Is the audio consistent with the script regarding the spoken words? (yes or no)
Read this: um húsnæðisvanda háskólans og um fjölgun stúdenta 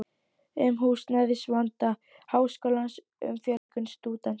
no